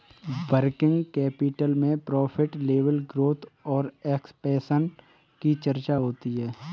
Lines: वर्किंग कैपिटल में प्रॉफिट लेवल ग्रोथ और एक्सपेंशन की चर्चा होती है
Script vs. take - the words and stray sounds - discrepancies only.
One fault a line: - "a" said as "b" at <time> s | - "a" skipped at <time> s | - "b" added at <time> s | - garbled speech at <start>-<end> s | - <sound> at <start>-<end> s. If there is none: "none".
none